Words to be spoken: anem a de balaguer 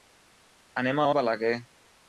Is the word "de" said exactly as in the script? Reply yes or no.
yes